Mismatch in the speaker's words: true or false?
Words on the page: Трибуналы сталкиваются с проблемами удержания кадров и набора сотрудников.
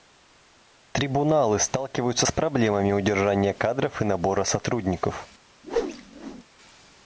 false